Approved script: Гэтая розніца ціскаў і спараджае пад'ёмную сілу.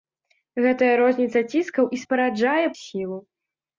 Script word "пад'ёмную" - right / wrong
wrong